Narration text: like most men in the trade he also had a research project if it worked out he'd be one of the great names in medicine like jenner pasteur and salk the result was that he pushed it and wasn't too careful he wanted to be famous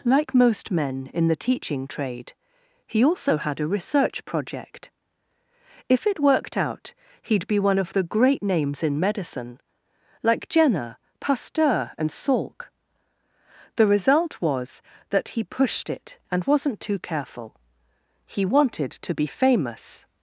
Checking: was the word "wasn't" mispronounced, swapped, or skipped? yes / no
no